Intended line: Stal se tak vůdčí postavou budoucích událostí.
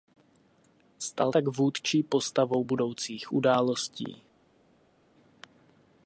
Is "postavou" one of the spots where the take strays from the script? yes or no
no